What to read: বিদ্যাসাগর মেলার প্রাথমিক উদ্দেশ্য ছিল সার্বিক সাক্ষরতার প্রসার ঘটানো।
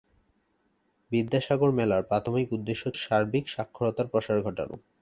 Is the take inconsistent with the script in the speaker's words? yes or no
yes